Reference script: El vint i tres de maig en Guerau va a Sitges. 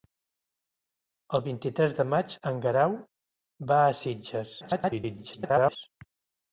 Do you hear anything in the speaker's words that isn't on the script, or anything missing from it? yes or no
yes